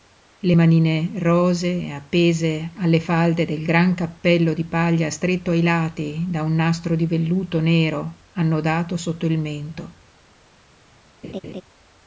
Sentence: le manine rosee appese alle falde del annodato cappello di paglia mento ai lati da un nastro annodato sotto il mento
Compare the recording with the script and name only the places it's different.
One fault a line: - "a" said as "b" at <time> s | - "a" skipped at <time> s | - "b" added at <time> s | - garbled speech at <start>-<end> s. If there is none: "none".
- "annodato" said as "gran" at 3.6 s
- "mento" said as "stretto" at 5.1 s
- "di velluto nero" added at 6.9 s